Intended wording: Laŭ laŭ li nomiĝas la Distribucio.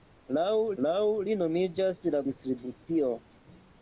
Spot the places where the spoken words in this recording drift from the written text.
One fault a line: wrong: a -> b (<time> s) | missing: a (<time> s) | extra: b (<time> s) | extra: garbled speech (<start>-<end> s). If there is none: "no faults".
no faults